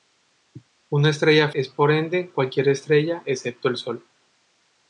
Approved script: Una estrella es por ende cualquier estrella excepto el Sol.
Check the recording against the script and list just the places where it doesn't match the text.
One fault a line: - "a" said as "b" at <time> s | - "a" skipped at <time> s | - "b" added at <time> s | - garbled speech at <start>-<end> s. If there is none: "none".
none